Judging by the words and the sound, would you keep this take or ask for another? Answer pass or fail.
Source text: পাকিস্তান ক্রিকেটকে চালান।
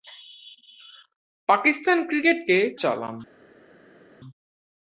pass